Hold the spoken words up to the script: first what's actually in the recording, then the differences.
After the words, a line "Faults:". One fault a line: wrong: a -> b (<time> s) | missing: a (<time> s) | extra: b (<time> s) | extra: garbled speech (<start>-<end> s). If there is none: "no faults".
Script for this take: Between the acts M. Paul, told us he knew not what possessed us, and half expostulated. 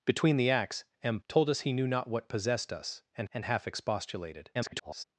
Between the acts M. Told us he knew not what possessed us, and and half expostulated. [garbled]
Faults:
missing: Paul (1.2 s)
extra: and (3.3 s)
extra: garbled speech (4.5-5.0 s)